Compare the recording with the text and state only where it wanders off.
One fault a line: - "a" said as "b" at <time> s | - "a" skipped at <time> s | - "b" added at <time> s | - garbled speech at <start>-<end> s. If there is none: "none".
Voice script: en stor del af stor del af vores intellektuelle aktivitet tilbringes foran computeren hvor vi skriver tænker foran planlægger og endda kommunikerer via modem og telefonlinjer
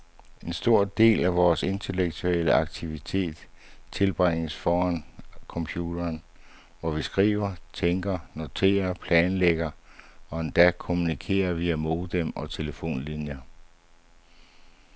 - "stor del af" skipped at 1.4 s
- "foran" said as "noterer" at 8.3 s